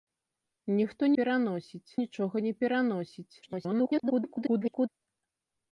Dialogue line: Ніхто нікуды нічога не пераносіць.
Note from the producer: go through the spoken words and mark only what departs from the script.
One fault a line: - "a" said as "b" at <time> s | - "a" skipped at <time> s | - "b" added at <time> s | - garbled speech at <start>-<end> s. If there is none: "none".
- "нікуды" said as "пераносіць" at 1.2 s
- garbled speech at 3.4-4.9 s